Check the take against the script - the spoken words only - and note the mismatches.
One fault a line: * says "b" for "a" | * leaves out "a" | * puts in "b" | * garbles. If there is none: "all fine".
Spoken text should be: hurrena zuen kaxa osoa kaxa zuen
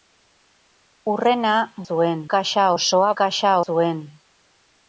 all fine